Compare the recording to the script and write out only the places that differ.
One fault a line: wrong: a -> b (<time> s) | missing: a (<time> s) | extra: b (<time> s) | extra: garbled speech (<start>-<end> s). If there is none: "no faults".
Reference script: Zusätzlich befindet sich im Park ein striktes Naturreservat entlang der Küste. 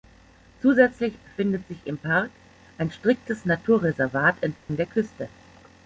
no faults